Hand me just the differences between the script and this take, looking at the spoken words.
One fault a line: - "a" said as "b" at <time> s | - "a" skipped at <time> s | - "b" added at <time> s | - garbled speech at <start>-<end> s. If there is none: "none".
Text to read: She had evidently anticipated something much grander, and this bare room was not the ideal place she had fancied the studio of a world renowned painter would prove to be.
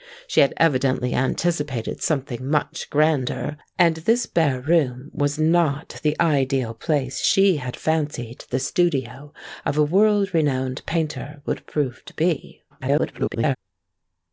- garbled speech at 12.7-13.6 s